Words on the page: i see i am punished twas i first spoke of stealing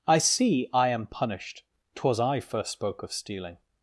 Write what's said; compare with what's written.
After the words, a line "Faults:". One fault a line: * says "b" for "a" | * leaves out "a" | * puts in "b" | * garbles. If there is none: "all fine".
i see i am punished twas i first spoke of stealing
Faults:
all fine